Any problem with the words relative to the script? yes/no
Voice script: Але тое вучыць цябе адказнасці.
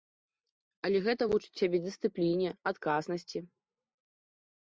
yes